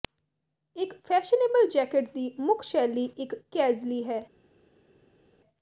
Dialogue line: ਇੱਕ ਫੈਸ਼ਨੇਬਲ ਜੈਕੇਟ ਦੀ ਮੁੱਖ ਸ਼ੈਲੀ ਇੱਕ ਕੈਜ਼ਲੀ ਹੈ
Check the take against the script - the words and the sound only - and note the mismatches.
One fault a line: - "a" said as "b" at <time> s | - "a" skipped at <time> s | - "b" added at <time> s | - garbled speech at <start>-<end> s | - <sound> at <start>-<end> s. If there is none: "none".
none